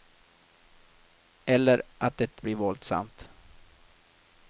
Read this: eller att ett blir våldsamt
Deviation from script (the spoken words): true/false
false